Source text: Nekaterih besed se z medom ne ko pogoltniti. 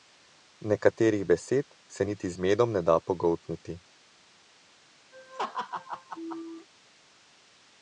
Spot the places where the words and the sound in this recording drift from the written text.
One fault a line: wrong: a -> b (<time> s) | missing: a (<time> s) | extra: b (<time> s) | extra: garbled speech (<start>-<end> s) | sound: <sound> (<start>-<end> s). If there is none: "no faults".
extra: niti (2.1 s)
wrong: ko -> da (2.8 s)
sound: laugh (5.1-6.7 s)